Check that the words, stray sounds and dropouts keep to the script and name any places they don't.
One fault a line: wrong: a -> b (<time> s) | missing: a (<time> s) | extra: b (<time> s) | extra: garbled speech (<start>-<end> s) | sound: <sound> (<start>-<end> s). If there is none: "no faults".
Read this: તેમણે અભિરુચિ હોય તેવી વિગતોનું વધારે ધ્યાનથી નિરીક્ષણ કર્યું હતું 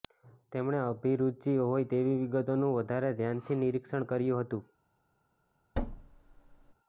sound: thud (5.7-6.7 s)